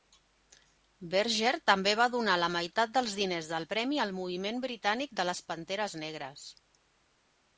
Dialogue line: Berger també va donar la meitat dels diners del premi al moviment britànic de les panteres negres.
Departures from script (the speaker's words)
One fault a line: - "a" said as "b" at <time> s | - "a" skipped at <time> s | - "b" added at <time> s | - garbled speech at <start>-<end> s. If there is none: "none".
none